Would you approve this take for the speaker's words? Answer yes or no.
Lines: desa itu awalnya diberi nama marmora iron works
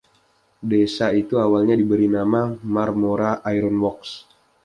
yes